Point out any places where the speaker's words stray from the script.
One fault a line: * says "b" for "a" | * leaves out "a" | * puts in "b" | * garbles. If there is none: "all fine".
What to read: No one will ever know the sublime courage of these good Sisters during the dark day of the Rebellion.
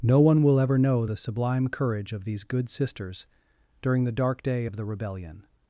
all fine